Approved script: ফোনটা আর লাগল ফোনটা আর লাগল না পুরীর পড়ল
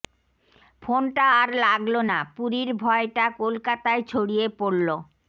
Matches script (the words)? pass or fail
fail